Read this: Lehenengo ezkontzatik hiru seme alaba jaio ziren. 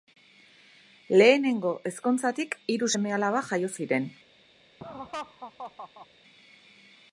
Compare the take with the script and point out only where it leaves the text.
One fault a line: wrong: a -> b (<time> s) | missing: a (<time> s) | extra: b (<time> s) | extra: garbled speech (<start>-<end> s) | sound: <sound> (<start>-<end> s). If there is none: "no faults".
sound: laugh (4.8-6.1 s)